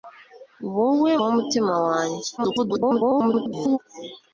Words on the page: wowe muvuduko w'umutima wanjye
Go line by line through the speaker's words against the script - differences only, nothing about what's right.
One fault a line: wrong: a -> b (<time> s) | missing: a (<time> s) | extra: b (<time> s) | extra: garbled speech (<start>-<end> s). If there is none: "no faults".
missing: muvuduko (1.1 s)
extra: garbled speech (2.4-3.8 s)